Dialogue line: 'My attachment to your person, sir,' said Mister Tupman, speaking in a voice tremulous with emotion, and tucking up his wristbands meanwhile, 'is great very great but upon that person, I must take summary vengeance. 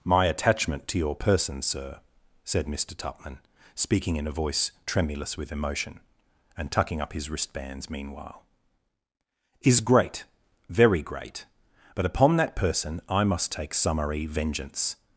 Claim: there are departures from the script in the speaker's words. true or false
false